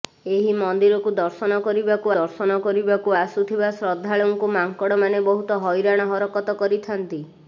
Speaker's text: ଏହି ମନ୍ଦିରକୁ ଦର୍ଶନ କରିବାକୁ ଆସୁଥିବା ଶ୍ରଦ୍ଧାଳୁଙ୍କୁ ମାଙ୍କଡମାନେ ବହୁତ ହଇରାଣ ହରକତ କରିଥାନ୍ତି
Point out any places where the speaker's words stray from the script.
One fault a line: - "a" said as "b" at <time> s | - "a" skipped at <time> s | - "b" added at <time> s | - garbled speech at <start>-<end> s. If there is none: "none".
- "ଦର୍ଶନ କରିବାକୁ" added at 2.1 s